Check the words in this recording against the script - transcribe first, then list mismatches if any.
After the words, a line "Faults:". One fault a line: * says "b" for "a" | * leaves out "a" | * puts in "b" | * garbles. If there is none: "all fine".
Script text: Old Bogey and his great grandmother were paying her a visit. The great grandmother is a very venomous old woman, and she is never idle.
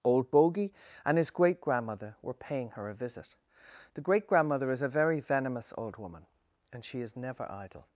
Old Bogey and his great grandmother were paying her a visit. The great grandmother is a very venomous old woman, and she is never idle.
Faults:
all fine